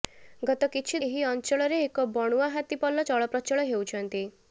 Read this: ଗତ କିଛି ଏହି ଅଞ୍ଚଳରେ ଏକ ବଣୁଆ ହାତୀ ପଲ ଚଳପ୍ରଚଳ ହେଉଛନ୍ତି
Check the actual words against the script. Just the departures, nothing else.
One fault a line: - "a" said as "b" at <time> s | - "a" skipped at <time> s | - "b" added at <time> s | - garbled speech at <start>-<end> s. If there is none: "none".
none